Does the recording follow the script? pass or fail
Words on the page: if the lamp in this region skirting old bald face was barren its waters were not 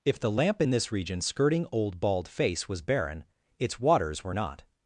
pass